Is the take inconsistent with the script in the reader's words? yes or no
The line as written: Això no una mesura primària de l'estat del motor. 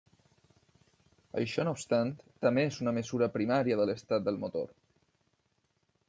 yes